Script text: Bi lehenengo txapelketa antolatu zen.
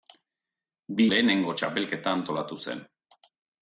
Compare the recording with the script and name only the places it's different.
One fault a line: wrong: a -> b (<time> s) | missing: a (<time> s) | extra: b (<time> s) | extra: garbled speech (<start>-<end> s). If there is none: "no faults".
no faults